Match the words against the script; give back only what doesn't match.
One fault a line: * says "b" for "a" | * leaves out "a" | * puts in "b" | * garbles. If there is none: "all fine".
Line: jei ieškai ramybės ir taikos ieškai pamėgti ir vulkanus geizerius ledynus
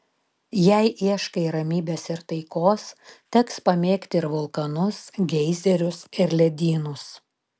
* says "teks" for "ieškai"
* puts in "ir"